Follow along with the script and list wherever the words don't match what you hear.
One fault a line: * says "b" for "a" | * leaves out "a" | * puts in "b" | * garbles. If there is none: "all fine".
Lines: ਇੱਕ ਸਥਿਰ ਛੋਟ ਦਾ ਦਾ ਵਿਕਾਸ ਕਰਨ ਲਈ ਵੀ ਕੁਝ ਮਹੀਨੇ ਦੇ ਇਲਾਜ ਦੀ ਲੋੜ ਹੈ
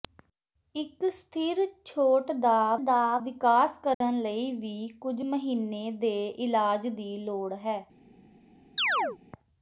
all fine